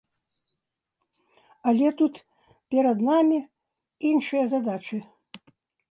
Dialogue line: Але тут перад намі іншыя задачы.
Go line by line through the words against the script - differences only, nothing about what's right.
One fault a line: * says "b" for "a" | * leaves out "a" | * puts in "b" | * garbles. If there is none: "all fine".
all fine